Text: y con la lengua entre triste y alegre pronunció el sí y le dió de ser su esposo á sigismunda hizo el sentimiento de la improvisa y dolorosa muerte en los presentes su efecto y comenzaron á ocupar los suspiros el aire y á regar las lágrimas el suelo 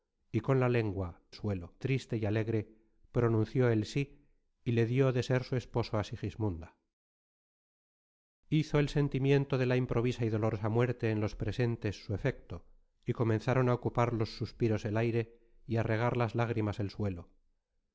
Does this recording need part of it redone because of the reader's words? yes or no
yes